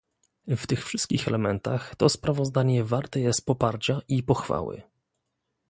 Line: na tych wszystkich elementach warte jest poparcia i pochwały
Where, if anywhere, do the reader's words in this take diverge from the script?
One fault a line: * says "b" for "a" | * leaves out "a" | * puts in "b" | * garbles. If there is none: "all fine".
* says "w" for "na"
* puts in "to sprawozdanie"